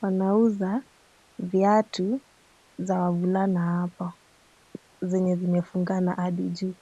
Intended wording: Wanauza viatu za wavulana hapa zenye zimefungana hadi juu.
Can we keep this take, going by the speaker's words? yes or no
yes